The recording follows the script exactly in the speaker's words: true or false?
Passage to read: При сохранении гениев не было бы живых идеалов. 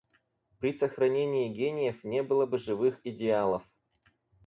true